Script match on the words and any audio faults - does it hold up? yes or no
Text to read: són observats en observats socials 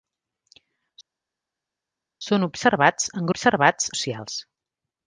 yes